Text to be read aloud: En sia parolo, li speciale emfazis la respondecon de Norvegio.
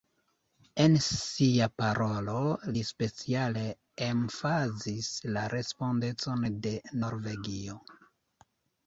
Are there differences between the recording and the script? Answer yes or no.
no